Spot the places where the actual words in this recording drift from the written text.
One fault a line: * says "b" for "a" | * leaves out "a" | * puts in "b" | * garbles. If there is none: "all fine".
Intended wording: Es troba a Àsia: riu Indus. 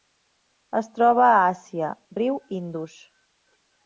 all fine